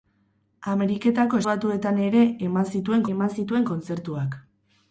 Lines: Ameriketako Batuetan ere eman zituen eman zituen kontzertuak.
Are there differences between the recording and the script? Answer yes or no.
no